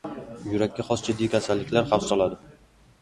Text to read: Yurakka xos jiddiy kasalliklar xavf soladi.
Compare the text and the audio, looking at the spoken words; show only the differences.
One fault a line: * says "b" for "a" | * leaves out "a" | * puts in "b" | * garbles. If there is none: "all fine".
all fine